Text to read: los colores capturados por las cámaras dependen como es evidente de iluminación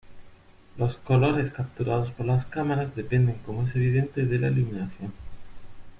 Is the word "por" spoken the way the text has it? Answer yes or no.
yes